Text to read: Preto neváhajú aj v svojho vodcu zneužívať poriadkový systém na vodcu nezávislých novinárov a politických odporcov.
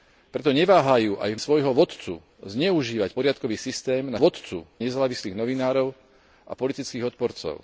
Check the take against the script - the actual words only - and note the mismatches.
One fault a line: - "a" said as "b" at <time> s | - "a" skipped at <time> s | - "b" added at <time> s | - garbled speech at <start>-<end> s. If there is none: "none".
none